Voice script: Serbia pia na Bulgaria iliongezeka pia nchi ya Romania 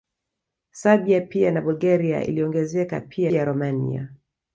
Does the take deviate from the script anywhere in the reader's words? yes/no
yes